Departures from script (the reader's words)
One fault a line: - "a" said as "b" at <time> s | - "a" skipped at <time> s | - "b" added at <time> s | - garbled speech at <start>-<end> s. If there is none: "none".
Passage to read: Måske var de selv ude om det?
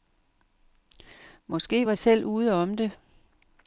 - "de" skipped at 1.9 s